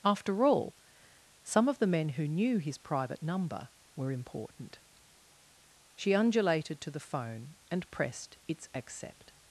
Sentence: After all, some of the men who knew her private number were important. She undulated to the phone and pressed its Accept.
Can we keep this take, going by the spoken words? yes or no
no